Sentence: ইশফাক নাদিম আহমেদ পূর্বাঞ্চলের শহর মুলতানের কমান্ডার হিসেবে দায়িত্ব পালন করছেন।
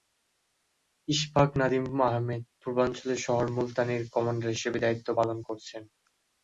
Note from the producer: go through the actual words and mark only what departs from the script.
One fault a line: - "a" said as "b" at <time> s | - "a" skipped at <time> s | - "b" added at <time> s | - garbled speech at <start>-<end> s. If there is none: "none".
none